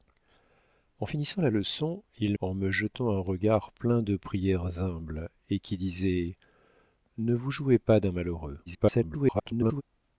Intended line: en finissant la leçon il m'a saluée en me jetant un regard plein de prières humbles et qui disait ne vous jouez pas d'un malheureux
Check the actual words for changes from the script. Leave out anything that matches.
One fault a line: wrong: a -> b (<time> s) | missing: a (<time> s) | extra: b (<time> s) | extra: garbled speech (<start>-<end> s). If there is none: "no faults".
missing: m'a saluée (2.4 s)
extra: garbled speech (8.7-9.8 s)